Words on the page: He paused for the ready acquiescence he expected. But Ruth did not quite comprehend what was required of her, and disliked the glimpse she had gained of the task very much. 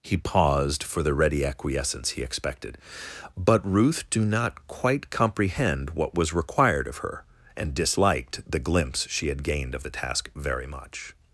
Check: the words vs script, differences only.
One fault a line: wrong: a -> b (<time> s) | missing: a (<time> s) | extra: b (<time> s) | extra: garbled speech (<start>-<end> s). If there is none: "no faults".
wrong: did -> do (4.1 s)